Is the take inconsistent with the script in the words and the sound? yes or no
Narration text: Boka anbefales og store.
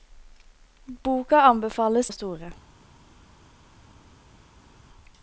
no